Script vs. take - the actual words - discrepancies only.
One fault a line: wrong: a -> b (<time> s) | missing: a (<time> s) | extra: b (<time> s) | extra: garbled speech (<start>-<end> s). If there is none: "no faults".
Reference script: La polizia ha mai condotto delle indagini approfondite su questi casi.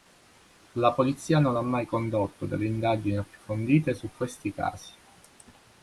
extra: non (1.4 s)